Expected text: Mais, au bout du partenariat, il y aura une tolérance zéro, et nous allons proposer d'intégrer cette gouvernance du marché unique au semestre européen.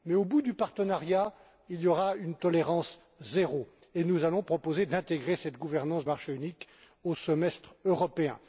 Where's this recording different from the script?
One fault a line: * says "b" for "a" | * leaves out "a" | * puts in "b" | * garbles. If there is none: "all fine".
* leaves out "du"